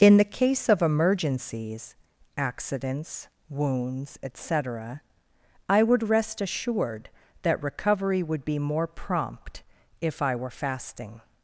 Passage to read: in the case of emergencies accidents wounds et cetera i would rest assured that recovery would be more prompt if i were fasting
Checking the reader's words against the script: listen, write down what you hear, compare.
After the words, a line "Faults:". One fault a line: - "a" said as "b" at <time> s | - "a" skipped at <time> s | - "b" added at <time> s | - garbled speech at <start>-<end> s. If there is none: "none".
in the case of emergencies accidents wounds et cetera i would rest assured that recovery would be more prompt if i were fasting
Faults:
none